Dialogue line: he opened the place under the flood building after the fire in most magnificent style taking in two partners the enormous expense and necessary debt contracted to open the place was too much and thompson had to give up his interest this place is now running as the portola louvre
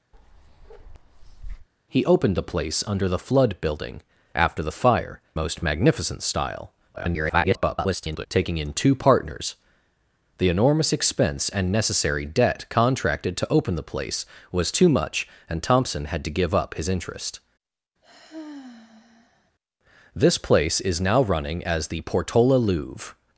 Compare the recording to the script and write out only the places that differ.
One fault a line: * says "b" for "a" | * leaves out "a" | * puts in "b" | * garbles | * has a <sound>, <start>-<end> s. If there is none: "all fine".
* has a bark, 0.1-1.7 s
* leaves out "in"
* garbles
* has a sigh, 18.0-19.5 s